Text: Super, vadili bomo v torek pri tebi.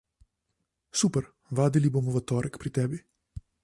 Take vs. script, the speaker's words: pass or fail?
pass